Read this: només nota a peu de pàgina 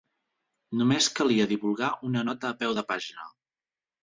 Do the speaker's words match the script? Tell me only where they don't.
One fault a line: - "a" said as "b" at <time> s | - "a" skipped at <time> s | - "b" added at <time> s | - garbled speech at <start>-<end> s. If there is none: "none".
- "calia divulgar una" added at 1.2 s